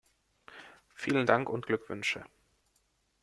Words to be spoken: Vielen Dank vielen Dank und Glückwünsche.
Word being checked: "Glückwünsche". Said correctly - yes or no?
yes